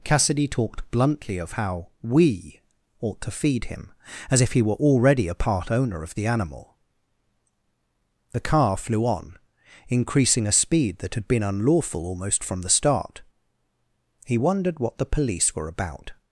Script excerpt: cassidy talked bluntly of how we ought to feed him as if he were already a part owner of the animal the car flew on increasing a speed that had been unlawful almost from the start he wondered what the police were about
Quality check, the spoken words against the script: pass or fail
pass